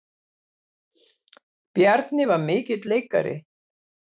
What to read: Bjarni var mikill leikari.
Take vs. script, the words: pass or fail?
pass